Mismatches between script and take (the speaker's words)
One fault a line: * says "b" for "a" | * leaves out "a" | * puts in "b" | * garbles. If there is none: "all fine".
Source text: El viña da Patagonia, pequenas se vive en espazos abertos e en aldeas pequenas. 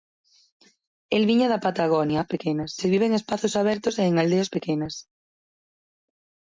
all fine